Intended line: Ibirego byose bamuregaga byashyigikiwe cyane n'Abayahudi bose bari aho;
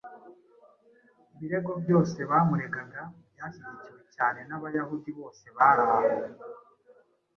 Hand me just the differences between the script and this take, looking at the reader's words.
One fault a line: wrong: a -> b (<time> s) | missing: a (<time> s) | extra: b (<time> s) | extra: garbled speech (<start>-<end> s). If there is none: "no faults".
no faults